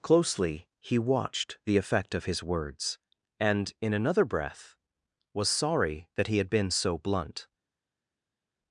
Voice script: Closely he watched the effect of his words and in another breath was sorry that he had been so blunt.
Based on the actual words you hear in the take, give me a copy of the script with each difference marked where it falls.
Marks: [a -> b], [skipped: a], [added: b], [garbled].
Closely he watched the effect of his words and in another breath was sorry that he had been so blunt.